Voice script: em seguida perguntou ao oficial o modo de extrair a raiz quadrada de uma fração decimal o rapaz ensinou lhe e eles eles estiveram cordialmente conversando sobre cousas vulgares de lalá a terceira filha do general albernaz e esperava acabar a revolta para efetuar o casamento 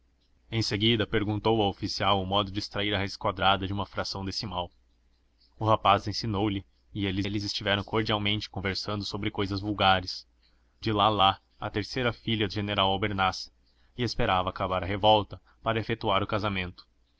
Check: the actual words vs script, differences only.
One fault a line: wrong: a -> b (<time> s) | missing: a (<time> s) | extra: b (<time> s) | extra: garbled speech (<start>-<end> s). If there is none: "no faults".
no faults